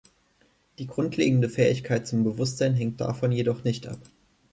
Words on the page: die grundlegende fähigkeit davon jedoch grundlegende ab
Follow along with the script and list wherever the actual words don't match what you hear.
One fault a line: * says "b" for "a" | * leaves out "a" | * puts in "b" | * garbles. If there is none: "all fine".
* puts in "zum bewusstsein hängt"
* says "nicht" for "grundlegende"